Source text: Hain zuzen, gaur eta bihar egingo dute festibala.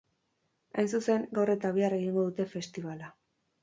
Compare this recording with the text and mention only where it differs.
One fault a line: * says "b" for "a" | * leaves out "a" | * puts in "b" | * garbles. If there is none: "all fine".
all fine